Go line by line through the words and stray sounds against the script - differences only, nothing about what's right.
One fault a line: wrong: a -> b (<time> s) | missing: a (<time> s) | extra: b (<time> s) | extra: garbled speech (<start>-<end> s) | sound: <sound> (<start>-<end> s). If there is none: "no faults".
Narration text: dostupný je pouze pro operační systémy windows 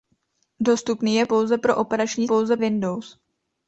wrong: systémy -> pouze (2.2 s)